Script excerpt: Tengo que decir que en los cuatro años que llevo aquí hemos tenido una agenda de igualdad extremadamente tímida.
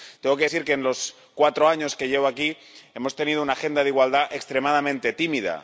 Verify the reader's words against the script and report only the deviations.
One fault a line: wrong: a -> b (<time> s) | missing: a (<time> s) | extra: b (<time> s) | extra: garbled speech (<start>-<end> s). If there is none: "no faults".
no faults